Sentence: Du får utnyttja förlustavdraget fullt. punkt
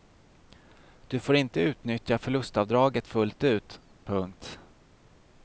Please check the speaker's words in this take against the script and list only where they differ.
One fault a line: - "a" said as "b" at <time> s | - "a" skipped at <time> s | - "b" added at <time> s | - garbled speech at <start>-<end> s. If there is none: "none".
- "inte" added at 1.4 s
- "ut" added at 3.4 s